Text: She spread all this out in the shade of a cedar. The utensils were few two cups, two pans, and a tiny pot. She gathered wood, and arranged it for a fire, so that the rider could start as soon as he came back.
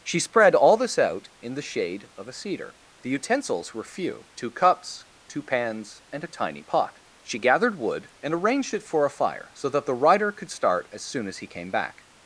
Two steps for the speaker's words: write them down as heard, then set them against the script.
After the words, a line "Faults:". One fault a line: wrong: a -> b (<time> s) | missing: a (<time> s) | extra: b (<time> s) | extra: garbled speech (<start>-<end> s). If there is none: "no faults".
She spread all this out in the shade of a cedar. The utensils were few two cups, two pans, and a tiny pot. She gathered wood, and arranged it for a fire, so that the rider could start as soon as he came back.
Faults:
no faults